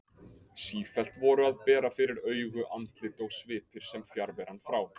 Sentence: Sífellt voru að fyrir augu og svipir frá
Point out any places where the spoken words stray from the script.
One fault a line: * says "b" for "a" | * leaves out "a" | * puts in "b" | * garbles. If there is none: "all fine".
* puts in "bera"
* puts in "andlit"
* puts in "sem fjarveran"